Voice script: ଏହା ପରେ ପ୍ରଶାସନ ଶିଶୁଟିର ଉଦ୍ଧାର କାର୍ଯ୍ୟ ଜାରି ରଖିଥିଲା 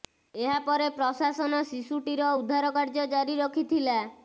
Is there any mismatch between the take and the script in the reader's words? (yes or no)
no